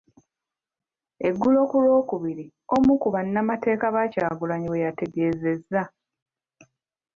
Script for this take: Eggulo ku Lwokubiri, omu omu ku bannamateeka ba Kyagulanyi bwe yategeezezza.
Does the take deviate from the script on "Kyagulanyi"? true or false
false